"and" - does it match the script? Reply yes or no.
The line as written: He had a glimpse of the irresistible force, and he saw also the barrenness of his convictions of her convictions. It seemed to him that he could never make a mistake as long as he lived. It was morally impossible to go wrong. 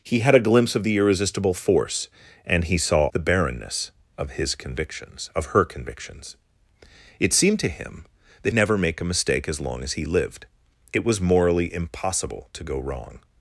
yes